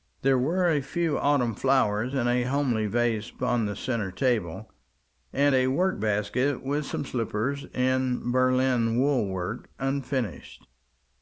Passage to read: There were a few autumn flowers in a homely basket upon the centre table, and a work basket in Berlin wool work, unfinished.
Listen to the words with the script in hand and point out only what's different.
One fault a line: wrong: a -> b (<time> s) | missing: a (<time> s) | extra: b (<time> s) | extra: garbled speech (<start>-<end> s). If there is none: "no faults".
wrong: basket -> vase (2.9 s)
extra: with some slippers (6.6 s)